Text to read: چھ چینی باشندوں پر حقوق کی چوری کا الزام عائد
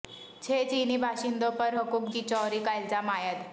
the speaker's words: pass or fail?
pass